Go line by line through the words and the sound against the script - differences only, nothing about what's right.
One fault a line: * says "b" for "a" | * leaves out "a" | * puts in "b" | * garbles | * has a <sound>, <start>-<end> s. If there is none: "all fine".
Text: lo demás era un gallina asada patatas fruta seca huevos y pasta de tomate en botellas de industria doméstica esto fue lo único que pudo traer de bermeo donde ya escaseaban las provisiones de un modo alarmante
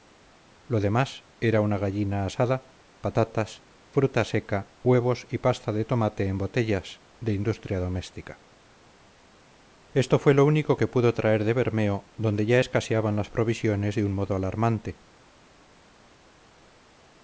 * says "una" for "un"